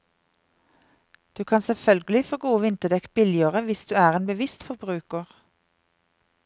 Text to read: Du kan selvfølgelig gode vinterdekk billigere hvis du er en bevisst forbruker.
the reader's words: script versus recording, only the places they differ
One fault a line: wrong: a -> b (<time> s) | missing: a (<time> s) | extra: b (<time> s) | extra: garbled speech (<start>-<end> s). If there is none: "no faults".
extra: få (2.2 s)